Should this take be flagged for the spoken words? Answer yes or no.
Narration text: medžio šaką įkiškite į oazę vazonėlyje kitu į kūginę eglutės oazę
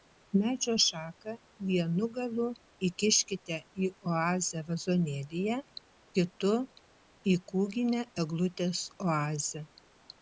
yes